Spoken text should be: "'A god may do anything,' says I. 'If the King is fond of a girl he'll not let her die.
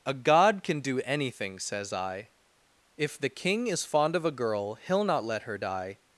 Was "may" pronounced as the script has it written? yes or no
no